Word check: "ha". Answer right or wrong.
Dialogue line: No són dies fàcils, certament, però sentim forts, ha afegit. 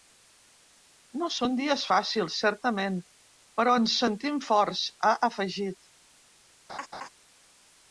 right